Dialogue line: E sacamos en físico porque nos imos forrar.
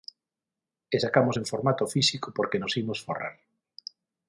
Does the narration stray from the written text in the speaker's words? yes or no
yes